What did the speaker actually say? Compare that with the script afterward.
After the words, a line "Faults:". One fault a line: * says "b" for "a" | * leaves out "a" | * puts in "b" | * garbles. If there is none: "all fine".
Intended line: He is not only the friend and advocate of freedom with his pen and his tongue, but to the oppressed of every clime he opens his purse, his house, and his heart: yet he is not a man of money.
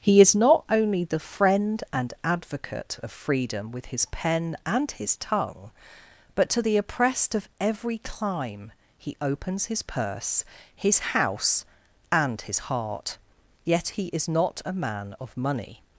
He is not only the friend and advocate of freedom with his pen and his tongue, but to the oppressed of every clime he opens his purse, his house, and his heart: yet he is not a man of money.
Faults:
all fine